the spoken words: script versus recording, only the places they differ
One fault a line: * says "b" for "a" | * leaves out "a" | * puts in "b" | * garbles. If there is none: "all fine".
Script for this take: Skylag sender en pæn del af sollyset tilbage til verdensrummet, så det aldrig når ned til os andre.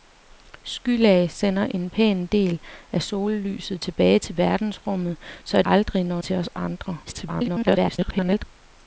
* leaves out "det"
* leaves out "ned"
* garbles